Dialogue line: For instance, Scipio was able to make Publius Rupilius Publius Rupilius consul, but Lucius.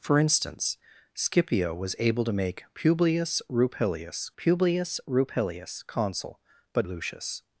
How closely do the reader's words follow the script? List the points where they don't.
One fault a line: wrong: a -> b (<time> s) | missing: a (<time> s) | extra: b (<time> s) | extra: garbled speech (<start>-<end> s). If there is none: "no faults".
no faults